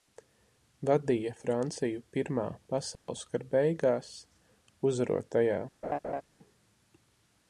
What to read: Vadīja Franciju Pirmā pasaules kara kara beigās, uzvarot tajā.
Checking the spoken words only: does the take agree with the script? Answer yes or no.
no